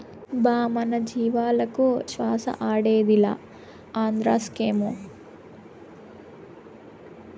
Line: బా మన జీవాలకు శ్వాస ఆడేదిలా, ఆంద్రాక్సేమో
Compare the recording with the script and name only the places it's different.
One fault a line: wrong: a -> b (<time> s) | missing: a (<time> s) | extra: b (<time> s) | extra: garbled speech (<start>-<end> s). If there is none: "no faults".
no faults